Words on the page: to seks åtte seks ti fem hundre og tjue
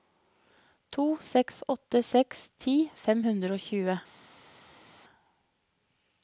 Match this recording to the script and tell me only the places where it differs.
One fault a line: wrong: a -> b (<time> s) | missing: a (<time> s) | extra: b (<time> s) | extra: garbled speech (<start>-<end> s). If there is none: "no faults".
no faults